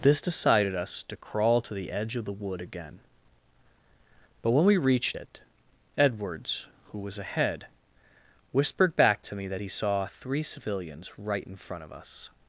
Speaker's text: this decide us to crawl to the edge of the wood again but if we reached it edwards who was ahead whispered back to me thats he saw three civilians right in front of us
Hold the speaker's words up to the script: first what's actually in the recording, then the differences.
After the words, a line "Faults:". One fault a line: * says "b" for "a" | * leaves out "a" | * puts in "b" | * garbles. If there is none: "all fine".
this decided us to crawl to the edge of the wood again but when we reached it edwards who was ahead whispered back to me that he saw three civilians right in front of us
Faults:
* says "decided" for "decide"
* says "when" for "if"
* says "that" for "thats"